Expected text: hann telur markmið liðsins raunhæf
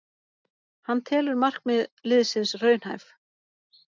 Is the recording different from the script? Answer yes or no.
no